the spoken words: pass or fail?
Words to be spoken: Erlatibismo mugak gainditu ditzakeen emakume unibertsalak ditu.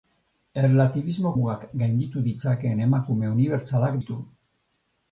pass